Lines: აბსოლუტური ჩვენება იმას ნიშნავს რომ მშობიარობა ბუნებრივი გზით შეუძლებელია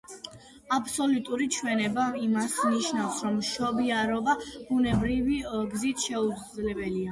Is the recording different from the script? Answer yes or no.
no